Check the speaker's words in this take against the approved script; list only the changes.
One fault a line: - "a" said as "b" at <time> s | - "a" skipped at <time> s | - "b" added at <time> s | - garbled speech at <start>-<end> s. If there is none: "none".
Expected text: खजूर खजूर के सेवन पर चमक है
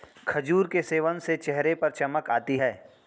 - "खजूर" skipped at 0.7 s
- "से चेहरे" added at 1.2 s
- "आती" added at 2.3 s